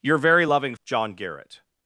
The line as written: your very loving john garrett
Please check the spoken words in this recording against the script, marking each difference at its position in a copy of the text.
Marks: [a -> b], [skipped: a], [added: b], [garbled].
your very loving john garrett